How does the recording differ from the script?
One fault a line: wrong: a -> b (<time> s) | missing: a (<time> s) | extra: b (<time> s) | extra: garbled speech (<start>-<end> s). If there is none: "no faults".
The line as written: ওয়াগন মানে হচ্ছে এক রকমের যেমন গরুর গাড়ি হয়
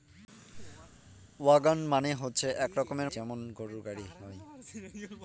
no faults